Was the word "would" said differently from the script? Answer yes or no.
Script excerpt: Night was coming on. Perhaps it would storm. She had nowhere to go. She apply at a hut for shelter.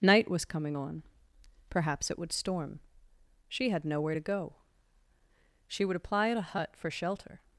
no